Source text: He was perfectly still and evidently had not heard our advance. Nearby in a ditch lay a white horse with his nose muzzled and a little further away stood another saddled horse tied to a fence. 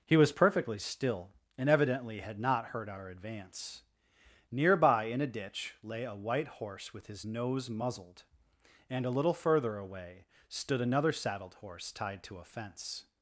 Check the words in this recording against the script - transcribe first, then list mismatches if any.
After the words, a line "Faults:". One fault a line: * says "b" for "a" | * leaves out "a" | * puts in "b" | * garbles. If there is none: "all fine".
He was perfectly still and evidently had not heard our advance. Nearby in a ditch lay a white horse with his nose muzzled and a little further away stood another saddled horse tied to a fence.
Faults:
all fine